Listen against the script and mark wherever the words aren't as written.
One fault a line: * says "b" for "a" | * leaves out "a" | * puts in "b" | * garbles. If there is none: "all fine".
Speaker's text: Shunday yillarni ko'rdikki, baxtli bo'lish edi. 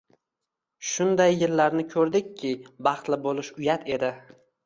* puts in "uyat"